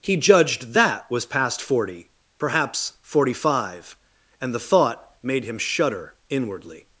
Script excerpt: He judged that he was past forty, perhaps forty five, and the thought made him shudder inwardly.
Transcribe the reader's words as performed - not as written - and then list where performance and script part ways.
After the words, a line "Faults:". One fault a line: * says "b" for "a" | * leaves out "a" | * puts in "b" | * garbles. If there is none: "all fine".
He judged that was past forty, perhaps forty five, and the thought made him shudder inwardly.
Faults:
* leaves out "he"